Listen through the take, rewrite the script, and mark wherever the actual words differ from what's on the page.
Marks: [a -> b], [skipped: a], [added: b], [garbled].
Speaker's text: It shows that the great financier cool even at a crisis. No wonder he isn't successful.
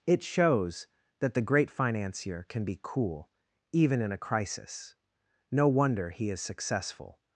It shows that the great financier [added: can be] cool even [at -> in] a crisis. No wonder he [isn't -> is] successful.